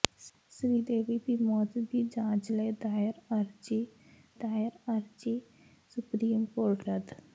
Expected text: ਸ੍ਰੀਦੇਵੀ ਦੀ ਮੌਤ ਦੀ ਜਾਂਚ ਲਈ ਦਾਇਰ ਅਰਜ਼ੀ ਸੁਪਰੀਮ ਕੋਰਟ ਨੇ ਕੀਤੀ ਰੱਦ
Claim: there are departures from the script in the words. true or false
true